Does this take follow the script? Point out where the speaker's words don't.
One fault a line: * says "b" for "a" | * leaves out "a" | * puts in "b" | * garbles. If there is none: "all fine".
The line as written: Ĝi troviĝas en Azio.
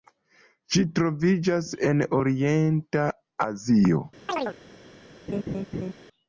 * puts in "Orienta"